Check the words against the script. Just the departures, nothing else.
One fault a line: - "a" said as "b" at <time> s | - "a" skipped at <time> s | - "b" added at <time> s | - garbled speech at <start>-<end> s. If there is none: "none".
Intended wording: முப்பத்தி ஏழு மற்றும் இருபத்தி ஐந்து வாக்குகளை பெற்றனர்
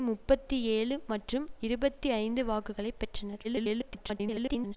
- garbled speech at 3.4-4.8 s